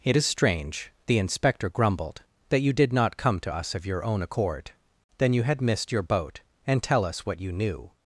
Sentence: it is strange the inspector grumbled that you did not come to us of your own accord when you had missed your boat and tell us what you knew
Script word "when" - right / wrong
wrong